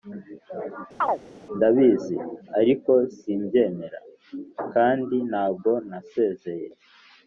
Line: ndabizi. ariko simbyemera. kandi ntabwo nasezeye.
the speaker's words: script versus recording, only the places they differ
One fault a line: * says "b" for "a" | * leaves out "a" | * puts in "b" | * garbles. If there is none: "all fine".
all fine